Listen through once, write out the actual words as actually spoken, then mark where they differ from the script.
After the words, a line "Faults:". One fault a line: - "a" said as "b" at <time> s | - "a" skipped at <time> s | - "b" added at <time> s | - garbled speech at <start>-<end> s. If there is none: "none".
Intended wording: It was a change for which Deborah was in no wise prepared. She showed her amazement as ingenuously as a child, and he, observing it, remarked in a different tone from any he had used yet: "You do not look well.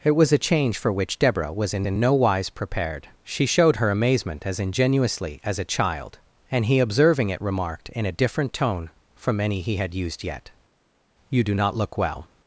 It was a change for which Deborah was in in no wise prepared. She showed her amazement as ingenuously as a child, and he, observing it, remarked in a different tone from any he had used yet: "You do not look well.
Faults:
- "in" added at 1.8 s